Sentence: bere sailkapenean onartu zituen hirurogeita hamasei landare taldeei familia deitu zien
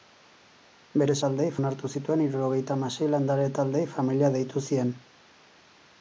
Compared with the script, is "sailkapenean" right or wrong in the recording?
wrong